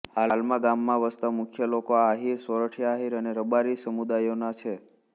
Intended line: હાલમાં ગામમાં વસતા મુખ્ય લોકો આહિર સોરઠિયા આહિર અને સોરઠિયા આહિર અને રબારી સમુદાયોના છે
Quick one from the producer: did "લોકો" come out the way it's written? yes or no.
yes